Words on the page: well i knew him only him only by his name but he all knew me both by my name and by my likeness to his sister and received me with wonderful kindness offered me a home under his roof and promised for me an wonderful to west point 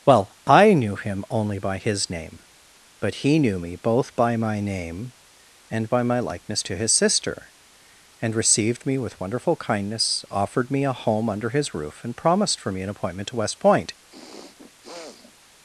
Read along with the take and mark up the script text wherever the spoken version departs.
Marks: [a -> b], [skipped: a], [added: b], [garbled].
well i knew him only [skipped: him only] by his name but he [skipped: all] knew me both by my name and by my likeness to his sister and received me with wonderful kindness offered me a home under his roof and promised for me an [wonderful -> appointment] to west point